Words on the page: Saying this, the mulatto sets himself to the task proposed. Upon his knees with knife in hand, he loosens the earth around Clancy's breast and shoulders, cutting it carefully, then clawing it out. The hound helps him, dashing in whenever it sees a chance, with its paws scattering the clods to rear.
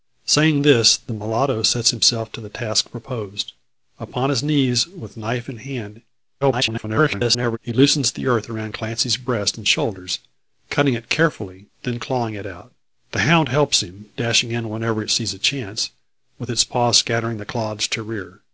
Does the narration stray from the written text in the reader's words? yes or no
yes